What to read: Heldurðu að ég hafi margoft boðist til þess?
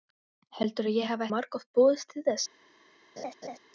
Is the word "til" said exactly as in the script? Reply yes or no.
yes